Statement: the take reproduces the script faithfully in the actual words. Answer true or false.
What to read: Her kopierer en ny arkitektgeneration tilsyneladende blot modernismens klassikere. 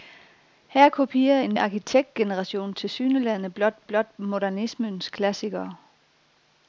false